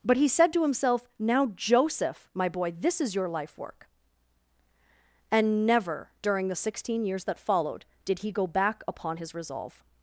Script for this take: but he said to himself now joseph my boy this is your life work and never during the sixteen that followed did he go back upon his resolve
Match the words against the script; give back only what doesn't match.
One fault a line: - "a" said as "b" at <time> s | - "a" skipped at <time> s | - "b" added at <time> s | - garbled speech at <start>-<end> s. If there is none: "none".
- "years" added at 7.0 s